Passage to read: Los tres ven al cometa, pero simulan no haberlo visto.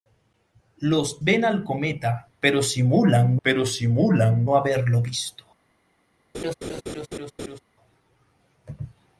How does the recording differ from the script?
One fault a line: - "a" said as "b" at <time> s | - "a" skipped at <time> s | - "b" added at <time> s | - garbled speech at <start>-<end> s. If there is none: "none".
- "tres" skipped at 1.2 s
- "pero simulan" added at 3.4 s